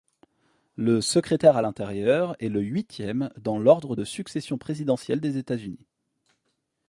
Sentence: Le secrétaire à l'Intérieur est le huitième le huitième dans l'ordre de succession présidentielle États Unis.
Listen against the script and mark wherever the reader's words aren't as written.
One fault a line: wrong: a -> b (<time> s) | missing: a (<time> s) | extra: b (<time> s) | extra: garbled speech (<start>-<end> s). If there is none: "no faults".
missing: le huitième (3.3 s)
extra: des (5.2 s)